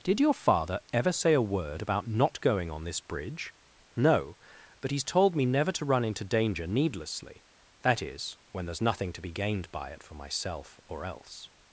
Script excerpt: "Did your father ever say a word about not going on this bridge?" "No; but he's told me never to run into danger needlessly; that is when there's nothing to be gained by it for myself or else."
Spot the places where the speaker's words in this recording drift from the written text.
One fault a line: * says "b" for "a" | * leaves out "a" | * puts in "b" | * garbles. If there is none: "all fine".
all fine